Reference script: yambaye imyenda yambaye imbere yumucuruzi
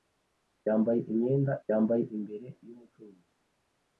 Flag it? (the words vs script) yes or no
no